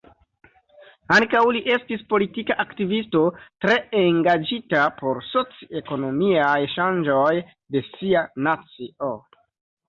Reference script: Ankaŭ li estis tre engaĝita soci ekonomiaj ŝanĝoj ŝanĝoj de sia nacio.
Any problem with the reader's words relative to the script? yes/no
yes